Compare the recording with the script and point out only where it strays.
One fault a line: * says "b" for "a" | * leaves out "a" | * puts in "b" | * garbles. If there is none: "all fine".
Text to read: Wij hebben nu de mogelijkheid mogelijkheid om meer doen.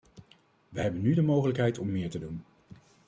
* leaves out "mogelijkheid"
* puts in "te"